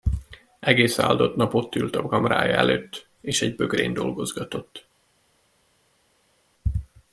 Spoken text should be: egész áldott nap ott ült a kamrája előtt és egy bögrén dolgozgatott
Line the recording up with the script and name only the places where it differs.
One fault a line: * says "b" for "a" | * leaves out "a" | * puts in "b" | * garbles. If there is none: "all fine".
all fine